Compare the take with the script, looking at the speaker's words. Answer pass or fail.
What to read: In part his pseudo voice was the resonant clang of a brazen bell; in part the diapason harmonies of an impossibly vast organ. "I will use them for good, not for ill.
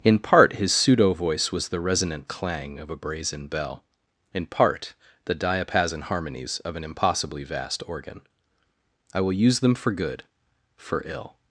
fail